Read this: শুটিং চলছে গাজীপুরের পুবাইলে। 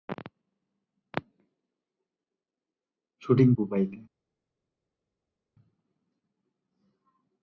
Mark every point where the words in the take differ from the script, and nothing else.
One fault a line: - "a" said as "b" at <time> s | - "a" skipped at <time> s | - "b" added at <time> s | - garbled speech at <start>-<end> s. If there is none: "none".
- "চলছে গাজীপুরের" skipped at 3.5 s